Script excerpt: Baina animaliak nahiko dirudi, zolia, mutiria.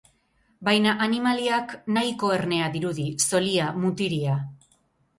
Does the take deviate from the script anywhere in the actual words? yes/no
yes